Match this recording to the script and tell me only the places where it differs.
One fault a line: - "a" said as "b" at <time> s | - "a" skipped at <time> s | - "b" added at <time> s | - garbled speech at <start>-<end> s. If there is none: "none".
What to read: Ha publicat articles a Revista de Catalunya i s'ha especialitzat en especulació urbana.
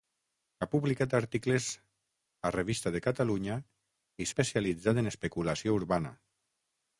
- "s'ha" skipped at 4.3 s